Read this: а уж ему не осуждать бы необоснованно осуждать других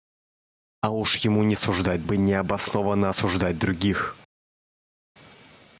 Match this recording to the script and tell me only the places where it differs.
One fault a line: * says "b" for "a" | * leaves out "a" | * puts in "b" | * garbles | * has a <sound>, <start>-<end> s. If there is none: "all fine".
all fine